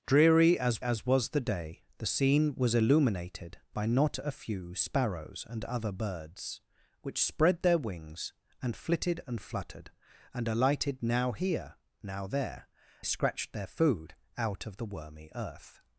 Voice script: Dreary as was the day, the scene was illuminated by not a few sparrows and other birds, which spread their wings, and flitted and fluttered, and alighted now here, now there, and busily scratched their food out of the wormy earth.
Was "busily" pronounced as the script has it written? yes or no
no